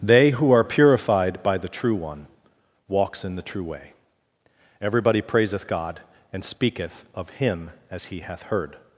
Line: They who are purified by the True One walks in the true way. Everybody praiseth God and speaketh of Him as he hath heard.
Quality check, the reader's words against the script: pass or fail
pass